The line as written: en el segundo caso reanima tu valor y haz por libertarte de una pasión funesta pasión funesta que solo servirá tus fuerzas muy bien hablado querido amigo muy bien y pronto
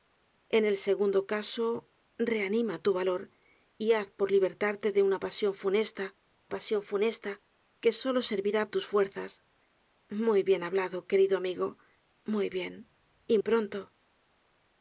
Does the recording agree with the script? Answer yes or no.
yes